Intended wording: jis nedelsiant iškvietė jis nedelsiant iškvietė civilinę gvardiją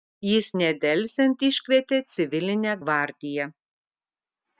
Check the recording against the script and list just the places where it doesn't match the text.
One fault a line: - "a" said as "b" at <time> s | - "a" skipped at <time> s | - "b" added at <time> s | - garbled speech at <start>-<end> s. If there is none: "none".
- "jis nedelsiant iškvietė" skipped at 2.0 s